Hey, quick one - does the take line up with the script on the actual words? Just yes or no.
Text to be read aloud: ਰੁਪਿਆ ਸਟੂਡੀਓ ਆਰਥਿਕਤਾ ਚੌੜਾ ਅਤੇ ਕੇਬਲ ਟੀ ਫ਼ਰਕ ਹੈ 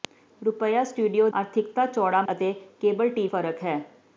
yes